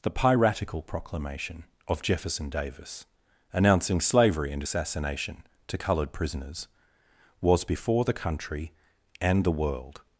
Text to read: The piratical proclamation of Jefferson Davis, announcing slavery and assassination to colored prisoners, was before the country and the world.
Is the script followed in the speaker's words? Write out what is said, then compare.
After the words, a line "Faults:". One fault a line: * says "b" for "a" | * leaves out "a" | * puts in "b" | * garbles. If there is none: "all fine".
The piratical proclamation of Jefferson Davis, announcing slavery and assassination to colored prisoners, was before the country and the world.
Faults:
all fine